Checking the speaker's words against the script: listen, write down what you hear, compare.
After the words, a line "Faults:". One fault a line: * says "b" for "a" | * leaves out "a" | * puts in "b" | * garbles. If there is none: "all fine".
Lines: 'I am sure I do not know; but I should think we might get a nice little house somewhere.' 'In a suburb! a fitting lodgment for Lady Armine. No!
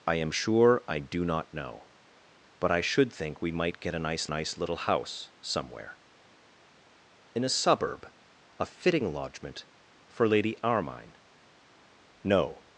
'I am sure I do not know; but I should think we might get a nice nice little house somewhere.' 'In a suburb! a fitting lodgment for Lady Armine. No!
Faults:
* puts in "nice"